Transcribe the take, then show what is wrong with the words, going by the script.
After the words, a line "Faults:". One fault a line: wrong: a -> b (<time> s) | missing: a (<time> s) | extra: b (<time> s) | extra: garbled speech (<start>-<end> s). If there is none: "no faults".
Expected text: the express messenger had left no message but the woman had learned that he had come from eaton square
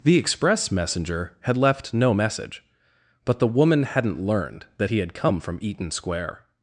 the express messenger had left no message but the woman hadn't learned that he had come from eaton square
Faults:
wrong: had -> hadn't (3.8 s)